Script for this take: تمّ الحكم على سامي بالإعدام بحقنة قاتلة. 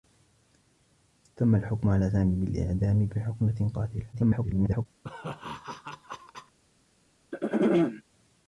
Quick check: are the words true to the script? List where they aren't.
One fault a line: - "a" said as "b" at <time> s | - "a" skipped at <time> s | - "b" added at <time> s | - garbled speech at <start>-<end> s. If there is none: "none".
- garbled speech at 4.1-4.9 s